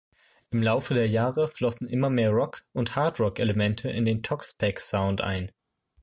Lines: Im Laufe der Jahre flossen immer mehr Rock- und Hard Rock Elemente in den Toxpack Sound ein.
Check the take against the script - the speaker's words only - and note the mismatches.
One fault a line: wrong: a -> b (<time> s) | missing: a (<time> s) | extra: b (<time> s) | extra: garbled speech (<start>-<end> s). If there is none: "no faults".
no faults